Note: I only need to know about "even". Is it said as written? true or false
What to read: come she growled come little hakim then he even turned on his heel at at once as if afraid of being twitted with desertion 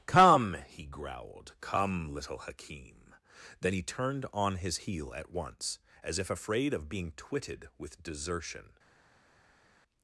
false